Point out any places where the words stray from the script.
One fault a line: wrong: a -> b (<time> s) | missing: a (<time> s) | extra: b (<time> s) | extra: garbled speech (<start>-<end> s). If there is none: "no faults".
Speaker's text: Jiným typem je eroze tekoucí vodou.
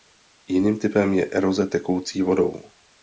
no faults